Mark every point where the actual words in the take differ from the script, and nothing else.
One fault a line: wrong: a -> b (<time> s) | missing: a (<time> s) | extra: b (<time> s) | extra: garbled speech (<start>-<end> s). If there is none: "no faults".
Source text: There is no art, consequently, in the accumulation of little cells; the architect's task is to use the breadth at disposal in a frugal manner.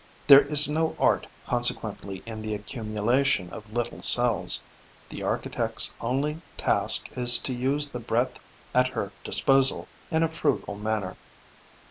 extra: only (6.0 s)
extra: her (8.9 s)